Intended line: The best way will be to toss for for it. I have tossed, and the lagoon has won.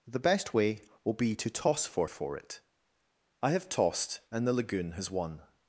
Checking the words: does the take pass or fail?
pass